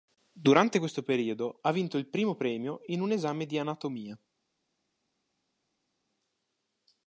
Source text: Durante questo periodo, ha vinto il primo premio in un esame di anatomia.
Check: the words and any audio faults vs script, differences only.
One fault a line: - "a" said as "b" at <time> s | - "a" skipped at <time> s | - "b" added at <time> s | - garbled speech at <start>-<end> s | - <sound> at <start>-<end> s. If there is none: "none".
none